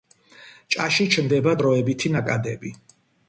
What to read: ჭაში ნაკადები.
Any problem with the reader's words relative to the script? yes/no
yes